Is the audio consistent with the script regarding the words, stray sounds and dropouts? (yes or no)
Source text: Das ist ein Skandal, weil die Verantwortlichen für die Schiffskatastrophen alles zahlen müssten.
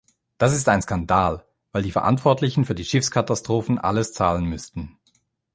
yes